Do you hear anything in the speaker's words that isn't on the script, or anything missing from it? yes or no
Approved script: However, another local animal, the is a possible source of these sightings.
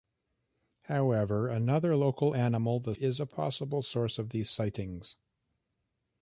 no